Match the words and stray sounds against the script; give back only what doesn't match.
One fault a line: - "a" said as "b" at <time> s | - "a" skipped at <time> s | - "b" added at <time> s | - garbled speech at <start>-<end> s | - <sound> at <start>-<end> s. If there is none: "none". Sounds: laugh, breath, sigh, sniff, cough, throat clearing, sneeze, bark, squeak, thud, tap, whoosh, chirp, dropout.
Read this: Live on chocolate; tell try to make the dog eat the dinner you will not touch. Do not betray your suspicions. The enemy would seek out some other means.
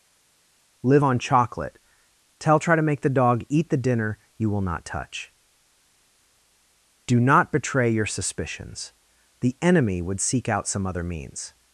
none